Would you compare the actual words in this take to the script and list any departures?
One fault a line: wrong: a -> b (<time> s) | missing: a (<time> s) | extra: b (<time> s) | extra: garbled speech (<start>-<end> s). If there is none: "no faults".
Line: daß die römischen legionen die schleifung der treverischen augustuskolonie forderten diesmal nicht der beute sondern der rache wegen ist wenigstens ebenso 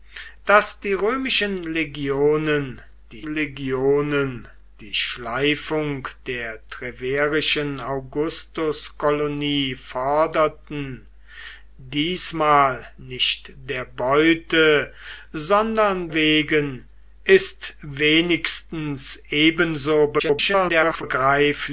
extra: legionen die (3.2 s)
missing: der rache (16.1 s)
extra: garbled speech (20.2-21.0 s)